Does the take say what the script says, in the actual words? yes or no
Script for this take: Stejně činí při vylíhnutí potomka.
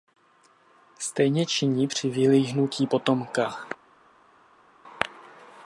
yes